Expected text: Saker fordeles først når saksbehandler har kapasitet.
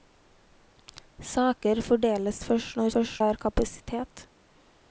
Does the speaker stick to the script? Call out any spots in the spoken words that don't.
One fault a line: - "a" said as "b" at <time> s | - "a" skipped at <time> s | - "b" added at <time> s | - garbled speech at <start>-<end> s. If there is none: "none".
- "saksbehandler" said as "først" at 2.9 s